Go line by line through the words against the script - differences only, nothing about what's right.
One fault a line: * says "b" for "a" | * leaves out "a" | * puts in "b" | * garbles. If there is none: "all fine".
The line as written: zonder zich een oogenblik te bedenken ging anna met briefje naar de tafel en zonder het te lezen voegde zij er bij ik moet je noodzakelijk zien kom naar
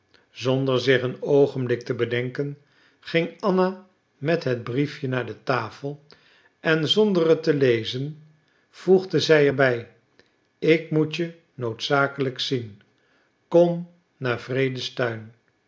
* puts in "het"